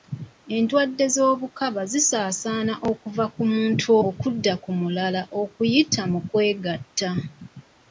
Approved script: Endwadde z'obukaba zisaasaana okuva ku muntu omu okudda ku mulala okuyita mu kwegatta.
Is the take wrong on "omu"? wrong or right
wrong